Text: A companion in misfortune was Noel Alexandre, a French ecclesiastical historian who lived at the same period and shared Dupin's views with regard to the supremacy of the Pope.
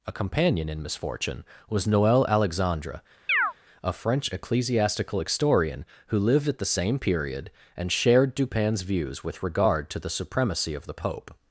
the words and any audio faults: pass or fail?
fail